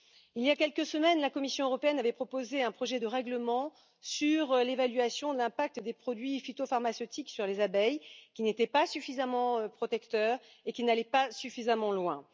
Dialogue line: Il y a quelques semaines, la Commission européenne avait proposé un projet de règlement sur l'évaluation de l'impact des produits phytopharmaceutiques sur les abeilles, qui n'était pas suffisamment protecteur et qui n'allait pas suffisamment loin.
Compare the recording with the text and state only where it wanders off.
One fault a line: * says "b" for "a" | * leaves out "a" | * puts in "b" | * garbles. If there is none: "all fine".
all fine